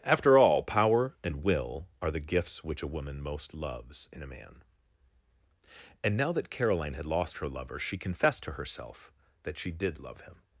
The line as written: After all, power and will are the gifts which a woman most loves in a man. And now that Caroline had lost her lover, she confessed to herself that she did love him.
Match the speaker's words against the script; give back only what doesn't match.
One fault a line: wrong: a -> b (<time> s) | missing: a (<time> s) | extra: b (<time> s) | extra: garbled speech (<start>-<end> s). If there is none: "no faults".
no faults